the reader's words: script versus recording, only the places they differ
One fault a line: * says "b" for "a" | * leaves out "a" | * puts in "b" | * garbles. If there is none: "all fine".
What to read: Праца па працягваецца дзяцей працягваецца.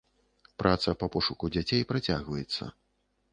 * says "пошуку" for "працягваецца"